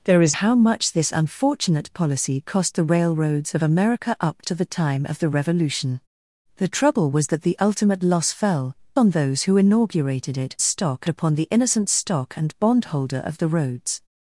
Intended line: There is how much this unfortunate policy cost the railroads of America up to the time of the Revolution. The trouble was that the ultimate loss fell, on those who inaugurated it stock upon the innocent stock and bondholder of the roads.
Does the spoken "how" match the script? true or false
true